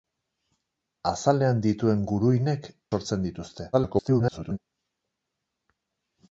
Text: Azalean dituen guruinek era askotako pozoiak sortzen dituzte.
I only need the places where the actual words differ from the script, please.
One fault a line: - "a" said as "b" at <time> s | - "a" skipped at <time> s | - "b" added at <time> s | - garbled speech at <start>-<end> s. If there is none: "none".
- "era askotako pozoiak" skipped at 2.7 s
- garbled speech at 3.7-4.6 s